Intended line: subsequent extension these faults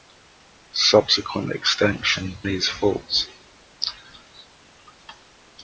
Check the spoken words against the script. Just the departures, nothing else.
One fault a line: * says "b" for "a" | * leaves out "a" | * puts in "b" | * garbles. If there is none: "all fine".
all fine